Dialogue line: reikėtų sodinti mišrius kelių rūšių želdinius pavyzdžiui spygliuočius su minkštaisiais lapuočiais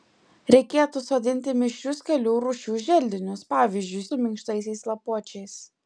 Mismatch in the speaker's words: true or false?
true